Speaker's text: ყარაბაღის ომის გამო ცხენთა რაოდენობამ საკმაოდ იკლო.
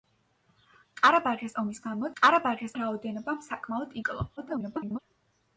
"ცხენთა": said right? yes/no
no